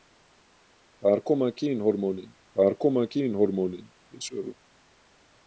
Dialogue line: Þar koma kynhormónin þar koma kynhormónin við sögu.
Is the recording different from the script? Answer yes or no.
no